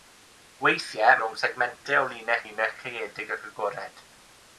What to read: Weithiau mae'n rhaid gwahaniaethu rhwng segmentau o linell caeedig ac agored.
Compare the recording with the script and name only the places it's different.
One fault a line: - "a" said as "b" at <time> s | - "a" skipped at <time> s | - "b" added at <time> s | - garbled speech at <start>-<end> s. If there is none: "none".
- "mae'n rhaid gwahaniaethu" skipped at 1.2 s
- "linell" added at 2.4 s